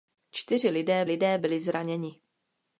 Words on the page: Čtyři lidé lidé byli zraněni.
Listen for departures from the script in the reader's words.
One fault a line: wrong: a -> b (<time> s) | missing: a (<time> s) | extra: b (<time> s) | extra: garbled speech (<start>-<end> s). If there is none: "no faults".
no faults